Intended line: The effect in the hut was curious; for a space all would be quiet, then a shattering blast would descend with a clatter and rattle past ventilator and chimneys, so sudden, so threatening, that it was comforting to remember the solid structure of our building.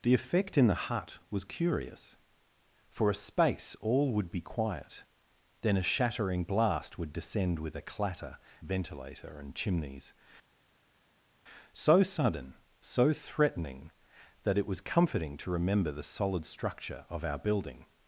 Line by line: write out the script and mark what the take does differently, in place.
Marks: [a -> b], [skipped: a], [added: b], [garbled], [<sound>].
The effect in the hut was curious; for a space all would be quiet, then a shattering blast would descend with a clatter [skipped: and rattle past] ventilator and chimneys, so sudden, so threatening, that it was comforting to remember the solid structure of our building.